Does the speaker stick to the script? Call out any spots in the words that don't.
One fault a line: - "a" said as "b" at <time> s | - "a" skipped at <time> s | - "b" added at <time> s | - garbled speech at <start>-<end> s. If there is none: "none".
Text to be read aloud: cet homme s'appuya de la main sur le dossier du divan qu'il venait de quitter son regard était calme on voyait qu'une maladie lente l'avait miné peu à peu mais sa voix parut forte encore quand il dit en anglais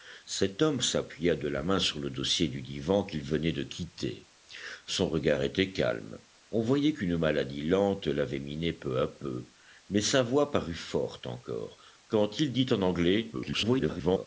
- garbled speech at 13.3-14.3 s